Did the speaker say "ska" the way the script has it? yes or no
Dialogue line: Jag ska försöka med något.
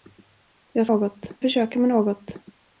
no